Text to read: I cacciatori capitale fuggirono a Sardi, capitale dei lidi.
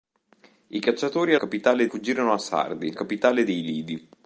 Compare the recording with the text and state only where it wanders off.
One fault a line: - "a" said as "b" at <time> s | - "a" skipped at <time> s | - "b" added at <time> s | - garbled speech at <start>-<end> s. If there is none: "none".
none